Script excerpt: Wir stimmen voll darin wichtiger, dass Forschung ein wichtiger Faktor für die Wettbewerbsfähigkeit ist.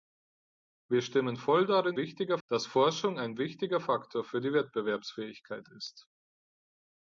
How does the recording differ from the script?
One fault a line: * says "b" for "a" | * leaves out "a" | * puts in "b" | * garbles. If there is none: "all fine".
all fine